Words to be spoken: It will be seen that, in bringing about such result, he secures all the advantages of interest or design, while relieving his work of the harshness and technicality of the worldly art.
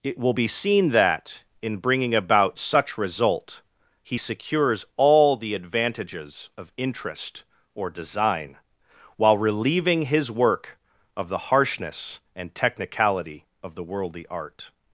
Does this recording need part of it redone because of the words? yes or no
no